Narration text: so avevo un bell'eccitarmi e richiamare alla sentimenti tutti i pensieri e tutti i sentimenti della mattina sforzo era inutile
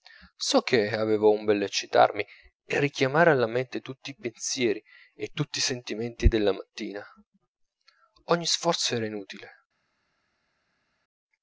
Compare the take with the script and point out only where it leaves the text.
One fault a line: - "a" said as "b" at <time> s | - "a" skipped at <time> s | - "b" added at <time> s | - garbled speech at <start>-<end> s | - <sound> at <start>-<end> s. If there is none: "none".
- "che" added at 0.6 s
- "sentimenti" said as "mente" at 3.5 s
- "ogni" added at 8.3 s